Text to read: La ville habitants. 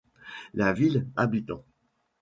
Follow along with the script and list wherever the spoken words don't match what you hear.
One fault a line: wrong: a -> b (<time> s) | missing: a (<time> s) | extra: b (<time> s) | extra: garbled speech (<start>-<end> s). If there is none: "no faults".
no faults